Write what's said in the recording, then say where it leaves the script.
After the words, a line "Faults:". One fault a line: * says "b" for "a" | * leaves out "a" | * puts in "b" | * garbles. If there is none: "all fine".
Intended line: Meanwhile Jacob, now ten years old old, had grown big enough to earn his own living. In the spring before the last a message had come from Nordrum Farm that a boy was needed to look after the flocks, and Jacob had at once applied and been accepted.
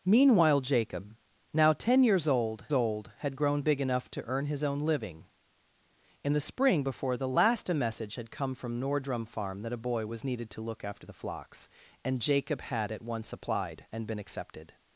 Meanwhile Jacob, now ten years old old, had grown big enough to earn his own living. In the spring before the last a message had come from Nordrum Farm that a boy was needed to look after the flocks, and Jacob had at once applied and been accepted.
Faults:
all fine